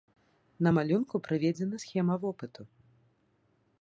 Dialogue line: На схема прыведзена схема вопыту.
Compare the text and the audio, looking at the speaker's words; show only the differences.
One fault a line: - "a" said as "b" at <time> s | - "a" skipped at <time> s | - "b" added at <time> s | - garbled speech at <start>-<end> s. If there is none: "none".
- "схема" said as "малюнку" at 0.8 s